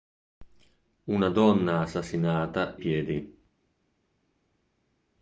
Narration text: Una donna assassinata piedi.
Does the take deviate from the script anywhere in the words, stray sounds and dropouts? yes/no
no